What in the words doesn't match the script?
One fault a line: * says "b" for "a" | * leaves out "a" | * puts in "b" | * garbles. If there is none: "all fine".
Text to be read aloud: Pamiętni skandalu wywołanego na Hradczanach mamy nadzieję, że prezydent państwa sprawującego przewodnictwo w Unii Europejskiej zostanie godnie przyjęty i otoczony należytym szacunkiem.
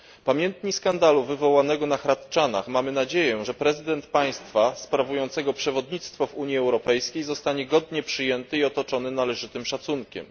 all fine